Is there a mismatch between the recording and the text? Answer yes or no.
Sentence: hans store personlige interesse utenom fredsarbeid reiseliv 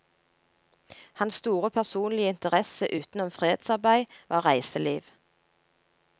yes